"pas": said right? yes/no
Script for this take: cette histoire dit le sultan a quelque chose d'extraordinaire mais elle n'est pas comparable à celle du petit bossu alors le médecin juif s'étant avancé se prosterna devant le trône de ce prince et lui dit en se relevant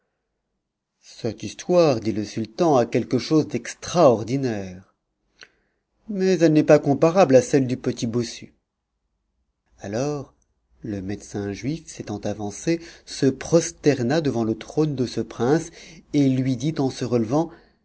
yes